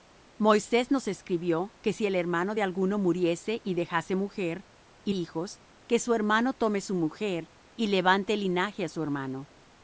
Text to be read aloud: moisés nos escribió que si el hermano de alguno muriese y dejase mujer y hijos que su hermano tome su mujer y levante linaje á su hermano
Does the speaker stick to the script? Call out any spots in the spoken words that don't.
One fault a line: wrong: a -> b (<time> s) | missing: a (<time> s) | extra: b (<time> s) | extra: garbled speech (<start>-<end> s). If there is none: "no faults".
no faults